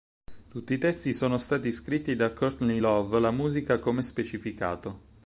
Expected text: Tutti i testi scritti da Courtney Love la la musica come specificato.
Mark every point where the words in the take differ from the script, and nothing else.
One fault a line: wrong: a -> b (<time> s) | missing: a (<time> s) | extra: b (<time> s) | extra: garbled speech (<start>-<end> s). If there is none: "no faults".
extra: sono stati (1.1 s)
missing: la (3.3 s)